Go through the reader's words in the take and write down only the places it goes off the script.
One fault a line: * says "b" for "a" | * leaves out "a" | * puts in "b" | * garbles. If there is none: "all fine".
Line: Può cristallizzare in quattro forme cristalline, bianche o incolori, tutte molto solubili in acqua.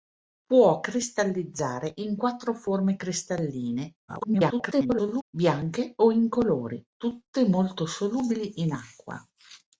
* garbles